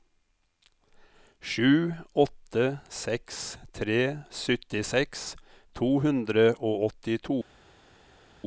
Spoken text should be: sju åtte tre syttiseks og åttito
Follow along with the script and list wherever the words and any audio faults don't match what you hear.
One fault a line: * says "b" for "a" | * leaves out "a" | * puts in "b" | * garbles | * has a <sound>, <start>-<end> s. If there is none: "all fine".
* puts in "seks"
* puts in "to hundre"